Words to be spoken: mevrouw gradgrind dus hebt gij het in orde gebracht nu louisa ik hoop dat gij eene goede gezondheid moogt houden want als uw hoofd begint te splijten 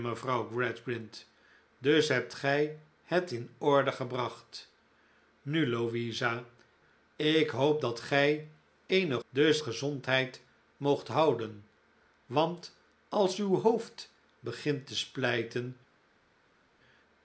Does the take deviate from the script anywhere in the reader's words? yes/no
yes